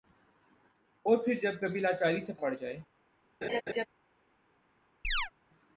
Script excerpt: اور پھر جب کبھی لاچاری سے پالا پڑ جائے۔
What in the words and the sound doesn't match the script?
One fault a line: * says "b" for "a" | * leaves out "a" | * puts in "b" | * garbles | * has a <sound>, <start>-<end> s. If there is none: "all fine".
* leaves out "پالا"
* has a laugh, 3.4-3.9 s
* has a chirp, 5.0-5.3 s